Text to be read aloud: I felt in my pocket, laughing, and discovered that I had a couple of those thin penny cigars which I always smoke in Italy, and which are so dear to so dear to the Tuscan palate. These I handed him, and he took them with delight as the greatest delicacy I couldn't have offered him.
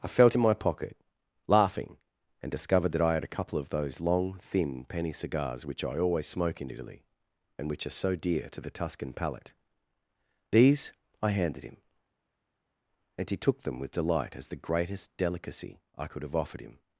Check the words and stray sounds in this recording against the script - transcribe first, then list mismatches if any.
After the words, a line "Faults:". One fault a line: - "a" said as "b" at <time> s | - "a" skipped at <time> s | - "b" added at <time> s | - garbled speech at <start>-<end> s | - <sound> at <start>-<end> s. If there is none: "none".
I felt in my pocket, laughing, and discovered that I had a couple of those long thin penny cigars which I always smoke in Italy, and which are so dear to the Tuscan palate. These I handed him, and he took them with delight as the greatest delicacy I could have offered him.
Faults:
- "long" added at 4.0 s
- "so dear to" skipped at 8.6 s
- "couldn't" said as "could" at 16.1 s